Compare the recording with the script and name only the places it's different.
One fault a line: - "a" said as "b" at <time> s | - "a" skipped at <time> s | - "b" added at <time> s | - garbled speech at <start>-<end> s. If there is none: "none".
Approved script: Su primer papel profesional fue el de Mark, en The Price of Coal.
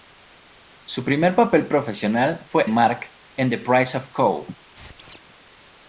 - "el de" skipped at 2.7 s